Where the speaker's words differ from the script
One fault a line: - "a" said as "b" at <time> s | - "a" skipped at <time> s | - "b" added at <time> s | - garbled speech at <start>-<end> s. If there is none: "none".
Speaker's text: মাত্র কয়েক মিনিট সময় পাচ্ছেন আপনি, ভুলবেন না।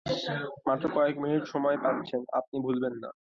none